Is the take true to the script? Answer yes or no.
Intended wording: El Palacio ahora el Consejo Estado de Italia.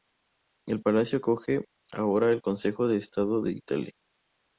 no